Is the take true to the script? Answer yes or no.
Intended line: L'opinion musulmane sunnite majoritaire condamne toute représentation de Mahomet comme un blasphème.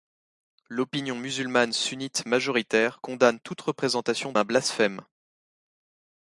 no